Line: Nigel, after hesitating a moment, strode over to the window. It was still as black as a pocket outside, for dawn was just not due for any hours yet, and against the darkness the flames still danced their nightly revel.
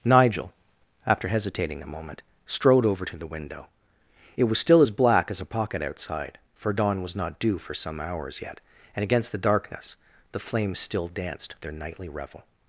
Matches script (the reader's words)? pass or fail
fail